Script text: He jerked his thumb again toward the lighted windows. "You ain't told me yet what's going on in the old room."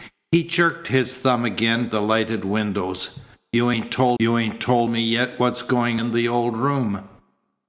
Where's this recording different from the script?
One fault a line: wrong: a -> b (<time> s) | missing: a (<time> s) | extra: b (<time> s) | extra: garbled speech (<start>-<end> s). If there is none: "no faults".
missing: toward (1.9 s)
extra: you ain't told (4.2 s)
missing: on (6.0 s)